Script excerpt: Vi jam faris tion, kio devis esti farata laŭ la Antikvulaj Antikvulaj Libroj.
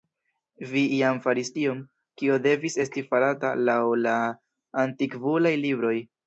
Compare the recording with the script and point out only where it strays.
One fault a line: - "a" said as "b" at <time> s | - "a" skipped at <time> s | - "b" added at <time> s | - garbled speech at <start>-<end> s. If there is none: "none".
- "Antikvulaj" skipped at 5.6 s